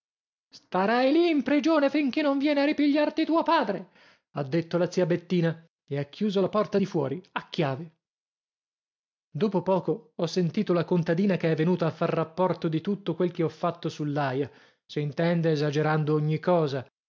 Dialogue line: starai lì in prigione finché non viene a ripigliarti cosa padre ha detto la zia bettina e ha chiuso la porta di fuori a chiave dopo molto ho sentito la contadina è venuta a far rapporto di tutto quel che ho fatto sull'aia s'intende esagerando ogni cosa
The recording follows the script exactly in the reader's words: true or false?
false